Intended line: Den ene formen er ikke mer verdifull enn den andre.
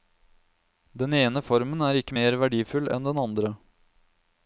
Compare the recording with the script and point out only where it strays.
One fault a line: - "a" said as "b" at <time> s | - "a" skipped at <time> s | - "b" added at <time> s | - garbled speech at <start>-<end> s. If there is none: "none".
none